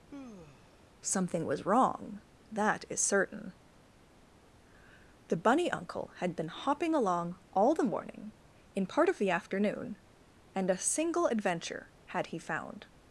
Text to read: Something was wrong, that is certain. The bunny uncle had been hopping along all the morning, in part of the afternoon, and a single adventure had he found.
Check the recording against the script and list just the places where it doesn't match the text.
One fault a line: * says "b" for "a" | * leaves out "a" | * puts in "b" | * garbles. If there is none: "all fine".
all fine